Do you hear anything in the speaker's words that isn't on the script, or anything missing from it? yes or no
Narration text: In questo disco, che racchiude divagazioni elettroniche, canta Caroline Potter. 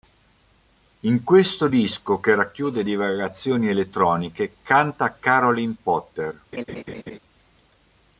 no